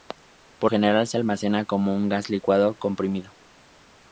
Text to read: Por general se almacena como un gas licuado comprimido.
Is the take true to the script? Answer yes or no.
yes